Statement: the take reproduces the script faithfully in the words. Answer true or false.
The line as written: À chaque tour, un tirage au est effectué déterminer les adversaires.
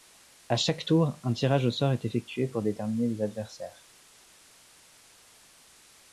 false